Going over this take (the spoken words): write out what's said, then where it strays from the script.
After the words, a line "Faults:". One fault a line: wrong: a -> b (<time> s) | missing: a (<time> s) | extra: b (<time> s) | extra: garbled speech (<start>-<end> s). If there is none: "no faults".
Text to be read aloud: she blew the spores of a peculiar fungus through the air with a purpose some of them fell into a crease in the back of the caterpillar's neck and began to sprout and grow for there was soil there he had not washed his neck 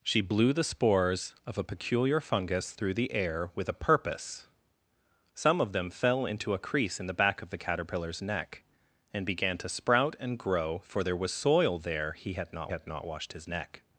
she blew the spores of a peculiar fungus through the air with a purpose some of them fell into a crease in the back of the caterpillar's neck and began to sprout and grow for there was soil there he had not had not washed his neck
Faults:
extra: had not (12.7 s)